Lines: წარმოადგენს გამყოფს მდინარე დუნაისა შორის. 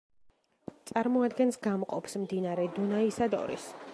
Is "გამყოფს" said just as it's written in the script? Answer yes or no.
yes